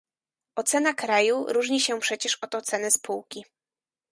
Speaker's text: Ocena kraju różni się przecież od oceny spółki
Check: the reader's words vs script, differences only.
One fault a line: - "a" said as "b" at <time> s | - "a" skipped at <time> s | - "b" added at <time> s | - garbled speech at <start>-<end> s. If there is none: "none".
none